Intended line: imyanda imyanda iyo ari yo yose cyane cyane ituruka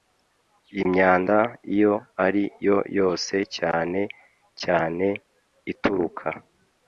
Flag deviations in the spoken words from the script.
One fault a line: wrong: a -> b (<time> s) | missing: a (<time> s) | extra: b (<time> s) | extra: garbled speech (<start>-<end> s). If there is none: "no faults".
missing: imyanda (1.4 s)